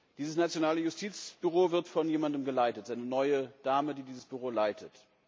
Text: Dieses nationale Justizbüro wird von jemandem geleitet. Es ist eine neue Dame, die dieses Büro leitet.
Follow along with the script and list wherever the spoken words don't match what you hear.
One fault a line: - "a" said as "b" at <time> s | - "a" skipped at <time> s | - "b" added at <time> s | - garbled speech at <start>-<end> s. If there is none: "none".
none